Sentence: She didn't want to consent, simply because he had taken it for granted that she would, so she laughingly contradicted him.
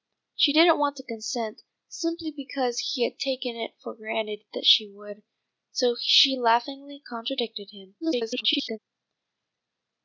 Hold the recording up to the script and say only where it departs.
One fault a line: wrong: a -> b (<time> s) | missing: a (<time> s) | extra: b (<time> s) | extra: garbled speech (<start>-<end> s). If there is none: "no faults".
extra: garbled speech (8.0-8.8 s)